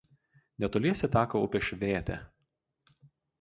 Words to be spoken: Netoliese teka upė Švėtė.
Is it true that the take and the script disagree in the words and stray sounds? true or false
false